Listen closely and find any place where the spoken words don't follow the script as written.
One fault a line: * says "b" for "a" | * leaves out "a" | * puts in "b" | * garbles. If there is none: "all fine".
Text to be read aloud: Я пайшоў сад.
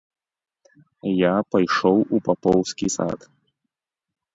* puts in "у папоўскі"